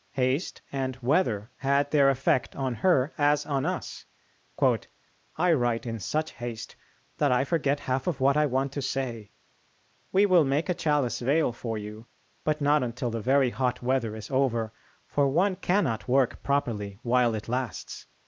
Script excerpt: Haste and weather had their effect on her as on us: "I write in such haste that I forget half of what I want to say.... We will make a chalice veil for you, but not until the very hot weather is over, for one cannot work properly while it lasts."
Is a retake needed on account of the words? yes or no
no